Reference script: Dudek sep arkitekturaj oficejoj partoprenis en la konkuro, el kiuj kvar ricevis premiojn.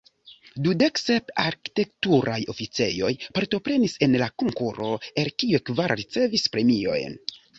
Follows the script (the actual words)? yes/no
yes